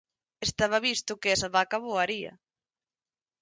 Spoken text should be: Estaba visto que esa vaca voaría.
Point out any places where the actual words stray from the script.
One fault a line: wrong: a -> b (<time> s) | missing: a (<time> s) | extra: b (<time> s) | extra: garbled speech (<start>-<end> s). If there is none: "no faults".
no faults